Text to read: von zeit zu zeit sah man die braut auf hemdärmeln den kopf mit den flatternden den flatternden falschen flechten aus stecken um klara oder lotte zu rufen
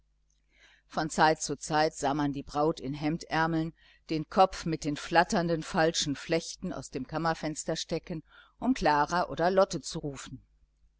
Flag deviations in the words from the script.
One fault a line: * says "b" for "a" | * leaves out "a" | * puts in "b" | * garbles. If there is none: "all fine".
* says "in" for "auf"
* leaves out "den flatternden"
* puts in "dem kammerfenster"